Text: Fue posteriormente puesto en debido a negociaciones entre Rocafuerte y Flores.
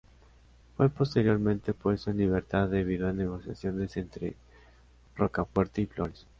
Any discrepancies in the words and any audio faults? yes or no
yes